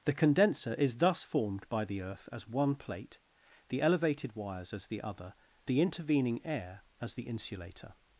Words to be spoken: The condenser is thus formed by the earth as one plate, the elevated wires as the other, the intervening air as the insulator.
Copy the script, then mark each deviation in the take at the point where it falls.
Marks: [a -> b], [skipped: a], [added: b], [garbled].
The condenser is thus formed by the earth as one plate, the elevated wires as the other, the intervening air as the insulator.